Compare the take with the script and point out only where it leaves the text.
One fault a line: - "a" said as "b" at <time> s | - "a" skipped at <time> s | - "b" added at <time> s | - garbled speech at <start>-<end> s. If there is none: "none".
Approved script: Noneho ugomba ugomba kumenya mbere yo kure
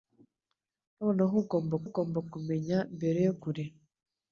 none